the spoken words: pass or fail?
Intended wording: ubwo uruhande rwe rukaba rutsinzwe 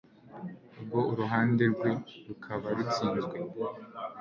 pass